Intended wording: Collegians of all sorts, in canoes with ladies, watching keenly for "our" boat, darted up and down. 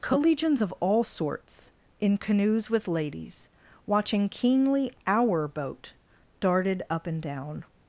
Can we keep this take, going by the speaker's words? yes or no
no